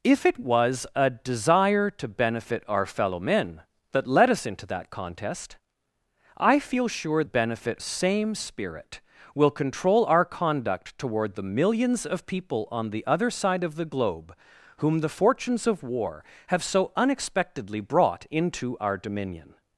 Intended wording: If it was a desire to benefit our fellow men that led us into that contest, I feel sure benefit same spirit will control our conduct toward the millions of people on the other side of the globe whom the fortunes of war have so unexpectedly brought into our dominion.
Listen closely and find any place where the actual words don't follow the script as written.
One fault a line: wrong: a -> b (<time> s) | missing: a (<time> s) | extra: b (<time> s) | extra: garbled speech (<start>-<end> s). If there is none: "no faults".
no faults